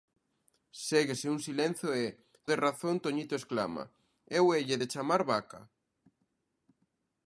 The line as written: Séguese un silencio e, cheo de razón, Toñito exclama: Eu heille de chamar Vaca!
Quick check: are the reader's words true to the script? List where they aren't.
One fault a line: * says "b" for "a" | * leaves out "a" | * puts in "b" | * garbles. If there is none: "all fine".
* leaves out "cheo"